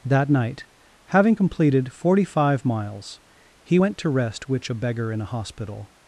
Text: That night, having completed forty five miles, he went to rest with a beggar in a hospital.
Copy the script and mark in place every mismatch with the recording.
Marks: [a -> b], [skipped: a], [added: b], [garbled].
That night, having completed forty five miles, he went to rest [with -> which] a beggar in a hospital.